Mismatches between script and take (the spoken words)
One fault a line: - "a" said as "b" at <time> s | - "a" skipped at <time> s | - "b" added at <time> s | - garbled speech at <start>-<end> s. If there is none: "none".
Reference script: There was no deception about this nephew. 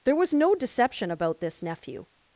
none